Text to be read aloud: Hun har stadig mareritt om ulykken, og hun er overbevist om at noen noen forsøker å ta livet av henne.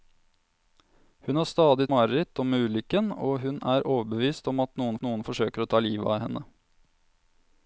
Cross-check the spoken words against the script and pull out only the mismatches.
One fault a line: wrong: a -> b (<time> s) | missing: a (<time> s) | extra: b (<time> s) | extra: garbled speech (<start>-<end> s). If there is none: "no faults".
no faults